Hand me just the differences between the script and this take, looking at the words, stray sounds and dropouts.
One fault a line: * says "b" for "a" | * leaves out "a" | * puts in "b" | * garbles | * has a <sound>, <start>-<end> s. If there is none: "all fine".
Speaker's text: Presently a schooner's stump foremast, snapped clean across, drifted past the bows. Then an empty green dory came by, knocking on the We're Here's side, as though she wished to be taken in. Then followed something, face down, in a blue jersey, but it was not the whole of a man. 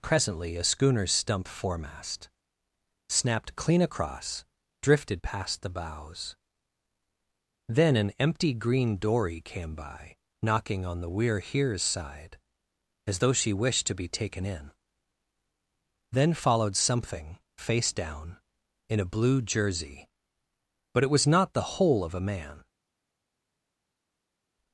all fine